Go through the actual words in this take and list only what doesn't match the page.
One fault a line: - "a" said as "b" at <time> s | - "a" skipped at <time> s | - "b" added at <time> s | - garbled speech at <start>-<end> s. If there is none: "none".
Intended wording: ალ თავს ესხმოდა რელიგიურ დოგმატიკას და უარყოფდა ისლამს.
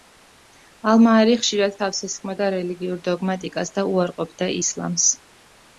- "მაარი ხშირად" added at 1.1 s